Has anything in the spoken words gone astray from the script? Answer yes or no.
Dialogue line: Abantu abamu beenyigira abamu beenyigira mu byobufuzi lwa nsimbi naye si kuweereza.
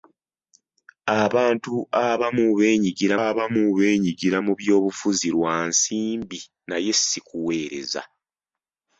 no